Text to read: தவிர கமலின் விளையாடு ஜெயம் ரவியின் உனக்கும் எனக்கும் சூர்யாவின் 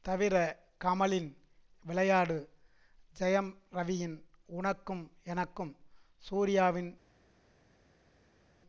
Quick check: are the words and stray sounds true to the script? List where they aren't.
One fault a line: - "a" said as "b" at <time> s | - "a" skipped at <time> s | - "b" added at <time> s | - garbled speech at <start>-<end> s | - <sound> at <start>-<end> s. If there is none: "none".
none